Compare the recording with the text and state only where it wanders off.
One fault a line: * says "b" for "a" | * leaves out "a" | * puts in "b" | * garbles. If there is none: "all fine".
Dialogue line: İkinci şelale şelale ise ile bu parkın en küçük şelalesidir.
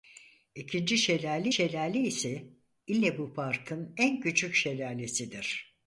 all fine